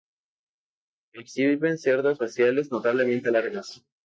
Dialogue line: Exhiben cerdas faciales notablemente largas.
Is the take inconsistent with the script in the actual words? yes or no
no